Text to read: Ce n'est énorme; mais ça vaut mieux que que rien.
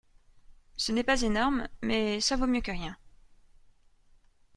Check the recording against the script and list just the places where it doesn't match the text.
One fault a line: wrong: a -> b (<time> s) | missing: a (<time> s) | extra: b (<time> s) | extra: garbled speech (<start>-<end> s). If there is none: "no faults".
extra: pas (1.0 s)
missing: que (2.7 s)